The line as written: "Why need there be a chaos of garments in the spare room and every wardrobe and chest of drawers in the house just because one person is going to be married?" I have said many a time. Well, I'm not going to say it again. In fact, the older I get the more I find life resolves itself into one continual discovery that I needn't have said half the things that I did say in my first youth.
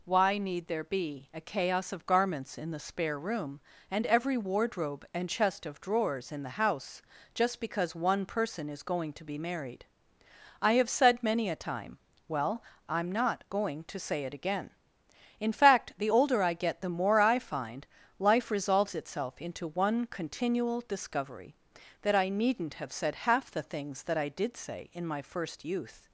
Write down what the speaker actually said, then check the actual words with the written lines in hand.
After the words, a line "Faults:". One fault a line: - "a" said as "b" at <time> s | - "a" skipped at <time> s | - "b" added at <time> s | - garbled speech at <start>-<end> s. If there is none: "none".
"Why need there be a chaos of garments in the spare room and every wardrobe and chest of drawers in the house just because one person is going to be married?" I have said many a time. Well, I'm not going to say it again. In fact, the older I get the more I find life resolves itself into one continual discovery that I needn't have said half the things that I did say in my first youth.
Faults:
none